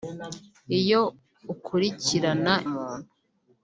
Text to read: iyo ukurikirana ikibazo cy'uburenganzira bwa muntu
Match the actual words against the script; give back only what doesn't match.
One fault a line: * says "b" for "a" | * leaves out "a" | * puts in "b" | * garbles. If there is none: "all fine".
* leaves out "ikibazo cy'uburenganzira bwa"